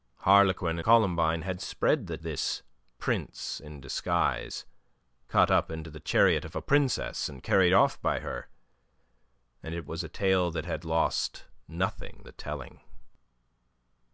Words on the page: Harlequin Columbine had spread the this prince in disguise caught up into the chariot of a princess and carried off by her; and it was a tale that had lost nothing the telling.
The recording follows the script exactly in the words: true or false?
true